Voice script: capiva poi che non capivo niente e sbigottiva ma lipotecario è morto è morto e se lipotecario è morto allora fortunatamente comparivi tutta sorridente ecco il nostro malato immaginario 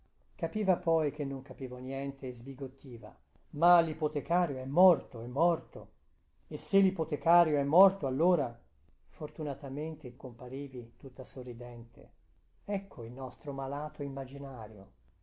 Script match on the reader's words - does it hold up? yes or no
yes